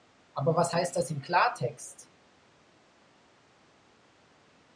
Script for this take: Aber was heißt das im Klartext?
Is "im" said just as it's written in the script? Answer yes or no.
yes